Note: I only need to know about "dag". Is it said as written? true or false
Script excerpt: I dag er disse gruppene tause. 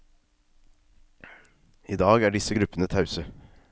true